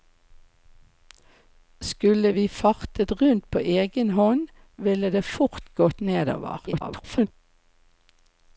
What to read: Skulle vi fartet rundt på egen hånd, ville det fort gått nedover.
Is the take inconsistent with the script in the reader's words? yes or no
yes